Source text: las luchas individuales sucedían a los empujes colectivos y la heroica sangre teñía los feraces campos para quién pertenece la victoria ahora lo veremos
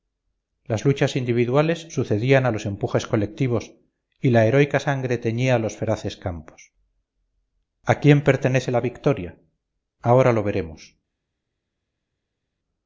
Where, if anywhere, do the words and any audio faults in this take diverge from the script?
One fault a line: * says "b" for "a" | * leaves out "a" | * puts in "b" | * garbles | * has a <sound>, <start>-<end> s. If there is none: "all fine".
* says "a" for "para"